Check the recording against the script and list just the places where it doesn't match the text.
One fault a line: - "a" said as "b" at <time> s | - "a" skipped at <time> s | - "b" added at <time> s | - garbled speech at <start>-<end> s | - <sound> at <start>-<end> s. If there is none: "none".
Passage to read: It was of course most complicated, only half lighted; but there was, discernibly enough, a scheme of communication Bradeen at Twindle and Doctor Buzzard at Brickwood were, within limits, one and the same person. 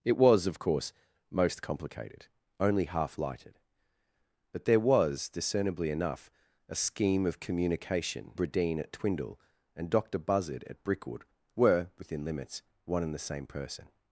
none